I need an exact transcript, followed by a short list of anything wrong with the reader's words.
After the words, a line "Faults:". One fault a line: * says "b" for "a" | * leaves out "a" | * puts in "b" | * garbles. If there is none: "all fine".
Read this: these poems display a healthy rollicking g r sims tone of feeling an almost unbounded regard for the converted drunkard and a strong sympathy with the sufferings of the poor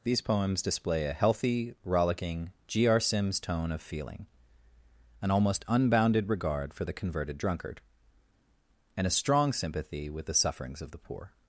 these poems display a healthy rollicking g r sims tone of feeling an almost unbounded regard for the converted drunkard and a strong sympathy with the sufferings of the poor
Faults:
all fine